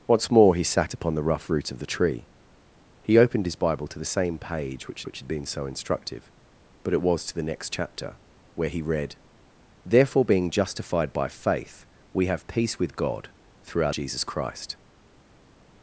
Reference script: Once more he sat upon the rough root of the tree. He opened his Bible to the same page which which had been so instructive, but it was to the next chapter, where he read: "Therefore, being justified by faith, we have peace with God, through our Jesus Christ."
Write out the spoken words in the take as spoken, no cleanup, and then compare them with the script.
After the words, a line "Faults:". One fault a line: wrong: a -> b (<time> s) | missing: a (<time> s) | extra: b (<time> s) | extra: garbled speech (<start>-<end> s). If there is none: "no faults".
Once more he sat upon the rough root of the tree. He opened his Bible to the same page which which had been so instructive, but it was to the next chapter, where he read: "Therefore, being justified by faith, we have peace with God, through our Jesus Christ."
Faults:
no faults